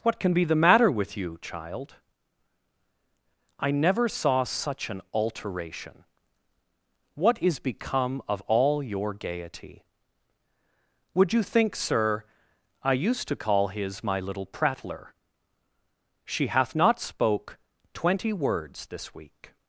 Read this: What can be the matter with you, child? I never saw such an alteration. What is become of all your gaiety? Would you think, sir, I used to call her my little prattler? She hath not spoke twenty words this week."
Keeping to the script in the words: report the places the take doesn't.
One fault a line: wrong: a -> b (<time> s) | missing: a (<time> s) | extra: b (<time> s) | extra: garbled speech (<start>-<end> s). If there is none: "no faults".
wrong: her -> his (13.7 s)